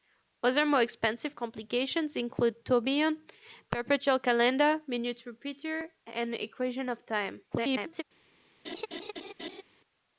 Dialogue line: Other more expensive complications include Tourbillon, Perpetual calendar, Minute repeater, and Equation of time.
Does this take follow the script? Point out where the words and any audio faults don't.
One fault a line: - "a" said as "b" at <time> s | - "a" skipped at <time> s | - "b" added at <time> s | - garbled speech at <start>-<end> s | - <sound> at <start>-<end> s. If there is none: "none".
- garbled speech at 7.5-8.0 s
- laugh at 8.6-9.6 s